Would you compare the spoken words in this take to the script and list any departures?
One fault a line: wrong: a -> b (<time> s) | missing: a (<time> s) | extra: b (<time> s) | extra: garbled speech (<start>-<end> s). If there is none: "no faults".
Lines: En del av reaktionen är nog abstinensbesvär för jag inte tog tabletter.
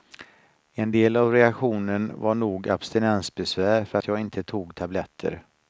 wrong: är -> var (2.1 s)
extra: att (3.9 s)